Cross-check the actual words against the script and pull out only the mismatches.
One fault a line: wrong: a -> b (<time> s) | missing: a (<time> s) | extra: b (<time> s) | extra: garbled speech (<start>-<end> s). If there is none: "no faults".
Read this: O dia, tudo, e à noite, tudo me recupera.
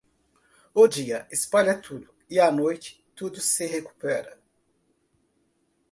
extra: espalha (1.3 s)
wrong: me -> se (3.4 s)